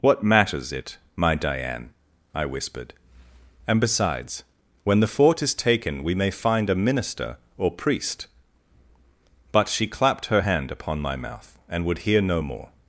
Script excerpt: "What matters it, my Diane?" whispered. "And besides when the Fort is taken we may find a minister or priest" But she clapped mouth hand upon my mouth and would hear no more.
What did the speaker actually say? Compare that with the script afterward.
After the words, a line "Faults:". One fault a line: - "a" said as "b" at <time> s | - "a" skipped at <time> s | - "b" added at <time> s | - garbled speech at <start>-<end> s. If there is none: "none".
"What matters it, my Diane?" I whispered. "And besides when the Fort is taken we may find a minister or priest" But she clapped her hand upon my mouth and would hear no more.
Faults:
- "I" added at 2.3 s
- "mouth" said as "her" at 10.3 s